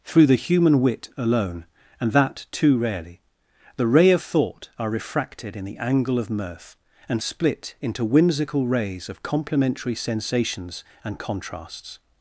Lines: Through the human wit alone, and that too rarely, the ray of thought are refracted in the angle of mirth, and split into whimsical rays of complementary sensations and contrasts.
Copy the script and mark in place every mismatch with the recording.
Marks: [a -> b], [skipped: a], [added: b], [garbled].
Through the human wit alone, and that too rarely, the ray of thought are refracted in the angle of mirth, and split into whimsical rays of complementary sensations and contrasts.